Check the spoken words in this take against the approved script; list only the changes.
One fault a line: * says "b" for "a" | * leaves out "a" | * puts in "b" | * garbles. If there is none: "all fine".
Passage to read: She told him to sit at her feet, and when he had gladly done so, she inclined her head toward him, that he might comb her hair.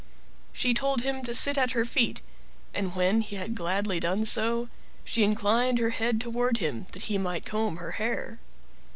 all fine